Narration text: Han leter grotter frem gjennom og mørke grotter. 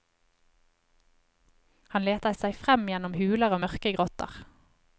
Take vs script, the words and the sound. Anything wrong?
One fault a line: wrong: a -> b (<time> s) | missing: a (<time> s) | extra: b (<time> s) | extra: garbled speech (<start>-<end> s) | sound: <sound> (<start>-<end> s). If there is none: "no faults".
wrong: grotter -> seg (2.4 s)
extra: huler (3.2 s)